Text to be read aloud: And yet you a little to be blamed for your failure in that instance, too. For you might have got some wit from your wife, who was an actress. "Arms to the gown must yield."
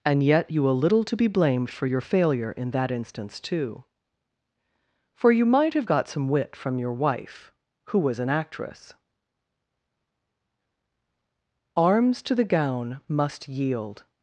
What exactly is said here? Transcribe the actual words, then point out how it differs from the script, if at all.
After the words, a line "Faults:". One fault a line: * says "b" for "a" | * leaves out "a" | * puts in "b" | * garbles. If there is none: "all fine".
And yet you a little to be blamed for your failure in that instance, too. For you might have got some wit from your wife, who was an actress. "Arms to the gown must yield."
Faults:
all fine